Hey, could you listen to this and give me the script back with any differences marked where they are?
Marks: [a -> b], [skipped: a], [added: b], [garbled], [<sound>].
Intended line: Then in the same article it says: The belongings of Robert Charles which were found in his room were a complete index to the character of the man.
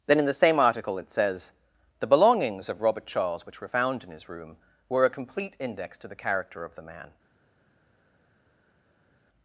Then in the same article it says: The belongings of Robert Charles which were found in his room were a complete index to the character of the man.